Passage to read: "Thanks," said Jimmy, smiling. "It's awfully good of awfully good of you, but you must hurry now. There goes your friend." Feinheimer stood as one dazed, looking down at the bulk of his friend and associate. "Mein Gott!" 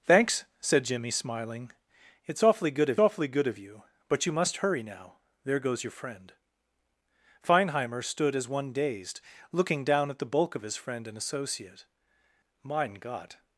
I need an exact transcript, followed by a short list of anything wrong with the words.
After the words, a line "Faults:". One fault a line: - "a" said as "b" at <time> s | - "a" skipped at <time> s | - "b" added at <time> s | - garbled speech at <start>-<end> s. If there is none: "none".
"Thanks," said Jimmy, smiling. "It's awfully good of awfully good of you, but you must hurry now. There goes your friend." Feinheimer stood as one dazed, looking down at the bulk of his friend and associate. "Mein Gott!"
Faults:
none